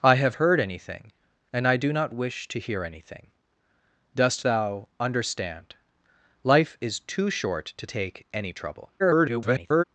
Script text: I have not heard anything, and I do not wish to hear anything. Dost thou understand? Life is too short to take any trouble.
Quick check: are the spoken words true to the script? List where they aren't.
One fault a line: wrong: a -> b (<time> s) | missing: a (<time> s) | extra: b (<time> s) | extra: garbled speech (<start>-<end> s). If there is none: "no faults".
missing: not (0.3 s)
extra: garbled speech (9.0-9.8 s)